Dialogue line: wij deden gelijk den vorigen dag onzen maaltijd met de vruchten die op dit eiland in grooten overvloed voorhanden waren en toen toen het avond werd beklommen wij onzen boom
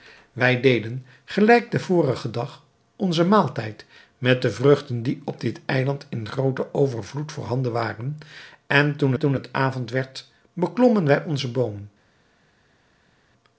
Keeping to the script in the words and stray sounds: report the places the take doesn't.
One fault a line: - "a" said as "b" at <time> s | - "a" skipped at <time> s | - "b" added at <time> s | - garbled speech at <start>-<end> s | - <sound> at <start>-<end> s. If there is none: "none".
none